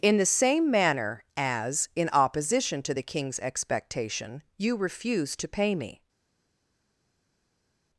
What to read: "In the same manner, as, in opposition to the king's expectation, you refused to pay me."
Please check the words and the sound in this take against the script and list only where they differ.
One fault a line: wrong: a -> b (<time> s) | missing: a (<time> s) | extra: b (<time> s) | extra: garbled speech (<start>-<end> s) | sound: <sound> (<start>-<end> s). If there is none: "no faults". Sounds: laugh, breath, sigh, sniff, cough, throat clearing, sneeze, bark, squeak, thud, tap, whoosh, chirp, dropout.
no faults